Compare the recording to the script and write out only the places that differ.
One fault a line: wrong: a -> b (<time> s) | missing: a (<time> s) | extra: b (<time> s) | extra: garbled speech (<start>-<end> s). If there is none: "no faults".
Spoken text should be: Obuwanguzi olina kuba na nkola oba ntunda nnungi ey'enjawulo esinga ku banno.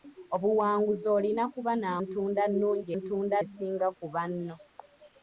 missing: nkola oba (1.9 s)
wrong: ey'enjawulo -> ntunda (3.0 s)